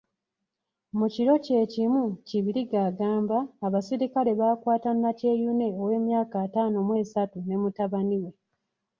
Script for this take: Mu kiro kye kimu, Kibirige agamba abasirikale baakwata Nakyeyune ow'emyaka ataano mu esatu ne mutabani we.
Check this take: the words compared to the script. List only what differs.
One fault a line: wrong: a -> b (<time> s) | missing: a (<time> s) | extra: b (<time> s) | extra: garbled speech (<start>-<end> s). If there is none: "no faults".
no faults